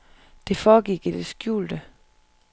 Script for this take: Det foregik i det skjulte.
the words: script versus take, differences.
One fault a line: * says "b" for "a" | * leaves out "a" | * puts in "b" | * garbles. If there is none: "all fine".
all fine